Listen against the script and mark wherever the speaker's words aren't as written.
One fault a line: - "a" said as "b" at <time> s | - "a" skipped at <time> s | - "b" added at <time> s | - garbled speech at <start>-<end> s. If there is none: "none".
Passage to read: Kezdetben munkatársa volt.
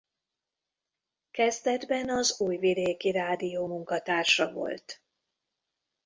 - "az Újvidéki Rádió" added at 2.1 s